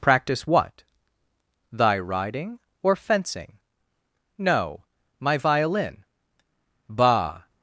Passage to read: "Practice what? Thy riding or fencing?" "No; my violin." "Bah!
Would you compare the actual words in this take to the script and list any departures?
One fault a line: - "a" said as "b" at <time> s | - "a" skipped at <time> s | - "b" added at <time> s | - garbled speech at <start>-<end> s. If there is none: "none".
none